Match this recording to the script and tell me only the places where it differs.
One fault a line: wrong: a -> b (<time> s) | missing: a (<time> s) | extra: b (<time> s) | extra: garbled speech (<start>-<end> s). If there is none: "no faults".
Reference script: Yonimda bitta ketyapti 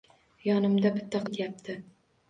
no faults